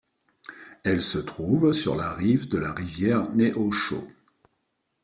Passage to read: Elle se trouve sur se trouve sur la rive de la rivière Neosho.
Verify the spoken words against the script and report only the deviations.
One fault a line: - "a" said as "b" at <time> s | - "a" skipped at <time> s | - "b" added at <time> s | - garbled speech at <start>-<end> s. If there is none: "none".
- "se trouve sur" skipped at 2.0 s